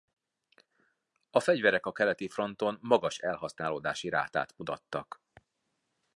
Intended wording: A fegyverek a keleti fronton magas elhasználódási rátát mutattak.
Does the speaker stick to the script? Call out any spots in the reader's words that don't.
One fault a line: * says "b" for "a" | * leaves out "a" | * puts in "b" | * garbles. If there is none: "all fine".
all fine